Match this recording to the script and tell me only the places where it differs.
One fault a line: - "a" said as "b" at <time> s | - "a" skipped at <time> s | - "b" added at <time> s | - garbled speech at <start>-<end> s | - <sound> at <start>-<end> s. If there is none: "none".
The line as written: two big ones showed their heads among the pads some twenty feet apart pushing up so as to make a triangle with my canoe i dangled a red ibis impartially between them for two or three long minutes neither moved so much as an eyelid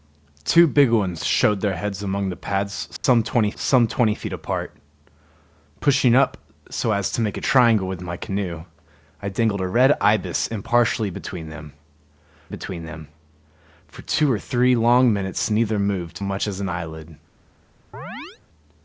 - dropout at 3.0-3.0 s
- "some twenty" added at 3.5 s
- "between them" added at 12.5 s
- "so" skipped at 16.2 s
- chirp at 17.9-18.4 s